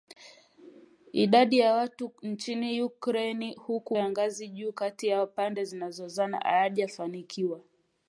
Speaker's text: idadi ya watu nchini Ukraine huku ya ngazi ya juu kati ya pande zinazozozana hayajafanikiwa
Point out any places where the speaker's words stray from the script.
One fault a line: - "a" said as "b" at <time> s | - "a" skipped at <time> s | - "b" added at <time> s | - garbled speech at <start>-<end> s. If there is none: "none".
none